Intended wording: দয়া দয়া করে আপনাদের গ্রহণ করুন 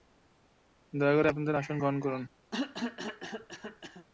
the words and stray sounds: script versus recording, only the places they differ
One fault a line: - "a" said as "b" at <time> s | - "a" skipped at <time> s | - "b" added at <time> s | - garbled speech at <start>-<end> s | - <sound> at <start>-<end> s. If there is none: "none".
- "দয়া" skipped at 1.1 s
- "আসন" added at 1.5 s
- cough at 2.5-4.1 s